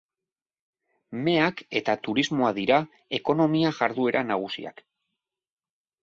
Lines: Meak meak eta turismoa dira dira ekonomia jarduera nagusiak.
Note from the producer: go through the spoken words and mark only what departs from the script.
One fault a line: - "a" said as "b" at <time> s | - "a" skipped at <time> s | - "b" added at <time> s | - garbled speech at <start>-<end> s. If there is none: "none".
- "meak" skipped at 1.6 s
- "dira" skipped at 2.8 s